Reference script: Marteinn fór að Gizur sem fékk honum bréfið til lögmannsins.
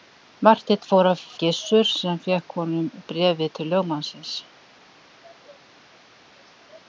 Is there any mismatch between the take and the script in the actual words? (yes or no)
no